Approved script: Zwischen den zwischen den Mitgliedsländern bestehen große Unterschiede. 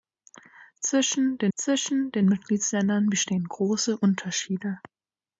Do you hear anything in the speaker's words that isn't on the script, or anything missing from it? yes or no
no